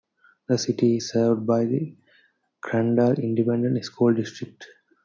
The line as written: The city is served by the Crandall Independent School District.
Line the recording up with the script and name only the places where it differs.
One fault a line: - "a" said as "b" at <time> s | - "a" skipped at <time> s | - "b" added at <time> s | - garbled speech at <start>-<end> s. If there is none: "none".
none